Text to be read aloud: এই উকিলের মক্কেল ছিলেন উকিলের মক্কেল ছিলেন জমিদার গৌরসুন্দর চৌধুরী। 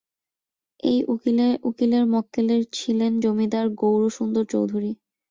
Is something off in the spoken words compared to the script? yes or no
yes